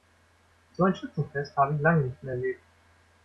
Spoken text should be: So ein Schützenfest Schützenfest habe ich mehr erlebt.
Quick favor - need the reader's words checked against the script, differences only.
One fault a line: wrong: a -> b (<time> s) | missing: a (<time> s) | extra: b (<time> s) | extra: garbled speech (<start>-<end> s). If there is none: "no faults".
missing: Schützenfest (1.6 s)
extra: lange nicht (1.8 s)